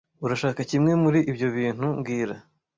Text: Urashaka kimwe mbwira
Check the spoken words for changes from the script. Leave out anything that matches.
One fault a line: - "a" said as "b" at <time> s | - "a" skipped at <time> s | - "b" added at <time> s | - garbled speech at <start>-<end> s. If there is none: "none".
- "muri ibyo bintu" added at 1.0 s